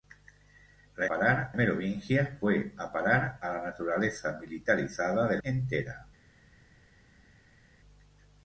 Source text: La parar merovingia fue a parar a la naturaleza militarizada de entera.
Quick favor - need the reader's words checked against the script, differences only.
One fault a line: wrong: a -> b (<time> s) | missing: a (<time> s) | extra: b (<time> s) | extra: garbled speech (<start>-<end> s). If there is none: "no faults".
no faults